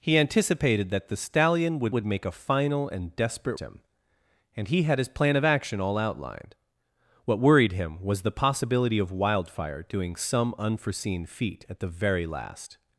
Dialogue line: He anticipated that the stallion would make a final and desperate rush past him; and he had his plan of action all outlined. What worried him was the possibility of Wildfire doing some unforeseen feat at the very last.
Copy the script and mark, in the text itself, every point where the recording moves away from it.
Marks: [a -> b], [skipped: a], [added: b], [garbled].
He anticipated that the stallion would [added: would] make a final and desperate [skipped: rush past] him; and he had his plan of action all outlined. What worried him was the possibility of Wildfire doing some unforeseen feat at the very last.